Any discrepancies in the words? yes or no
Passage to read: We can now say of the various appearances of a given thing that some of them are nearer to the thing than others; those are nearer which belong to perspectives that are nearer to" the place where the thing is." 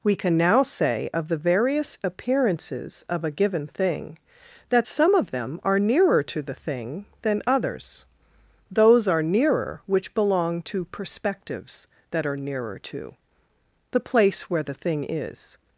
no